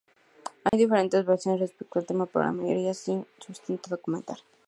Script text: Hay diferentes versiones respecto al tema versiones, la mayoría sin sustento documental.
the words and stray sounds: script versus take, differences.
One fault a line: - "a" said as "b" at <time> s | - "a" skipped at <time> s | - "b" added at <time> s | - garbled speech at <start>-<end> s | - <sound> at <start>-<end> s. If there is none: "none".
- dropout at 0.7-0.7 s
- "versiones" said as "pero" at 2.2 s